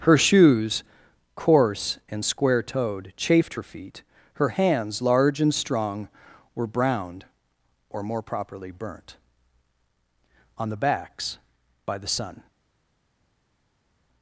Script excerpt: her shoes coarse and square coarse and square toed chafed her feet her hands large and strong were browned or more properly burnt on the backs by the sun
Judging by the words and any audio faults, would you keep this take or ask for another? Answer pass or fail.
fail